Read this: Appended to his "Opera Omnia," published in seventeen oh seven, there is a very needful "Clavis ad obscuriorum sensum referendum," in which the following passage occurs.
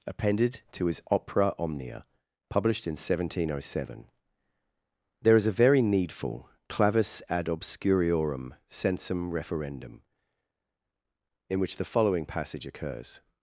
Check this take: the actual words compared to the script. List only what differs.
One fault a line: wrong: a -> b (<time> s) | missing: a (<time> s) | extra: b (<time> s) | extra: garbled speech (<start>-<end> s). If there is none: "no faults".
no faults